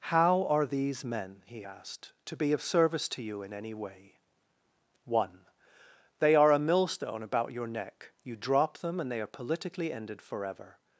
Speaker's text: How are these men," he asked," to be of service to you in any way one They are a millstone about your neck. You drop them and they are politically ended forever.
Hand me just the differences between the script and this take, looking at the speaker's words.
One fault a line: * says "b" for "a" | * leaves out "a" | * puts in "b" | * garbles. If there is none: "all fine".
all fine